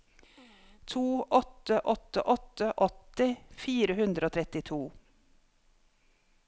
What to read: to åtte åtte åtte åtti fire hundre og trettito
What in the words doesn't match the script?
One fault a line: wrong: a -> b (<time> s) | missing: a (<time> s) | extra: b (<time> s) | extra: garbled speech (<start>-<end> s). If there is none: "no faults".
no faults